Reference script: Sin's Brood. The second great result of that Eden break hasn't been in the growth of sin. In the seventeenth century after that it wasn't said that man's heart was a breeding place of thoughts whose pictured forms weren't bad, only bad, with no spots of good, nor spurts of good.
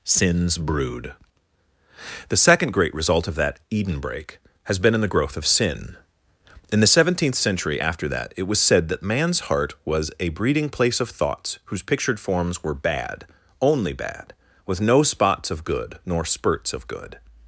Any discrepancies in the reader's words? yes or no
yes